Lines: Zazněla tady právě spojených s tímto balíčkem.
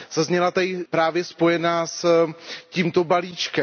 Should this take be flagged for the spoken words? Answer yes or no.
no